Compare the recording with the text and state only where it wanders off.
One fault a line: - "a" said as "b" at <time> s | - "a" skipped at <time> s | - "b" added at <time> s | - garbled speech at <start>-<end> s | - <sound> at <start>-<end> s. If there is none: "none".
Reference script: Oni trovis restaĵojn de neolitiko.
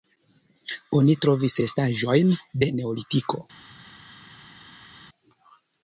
none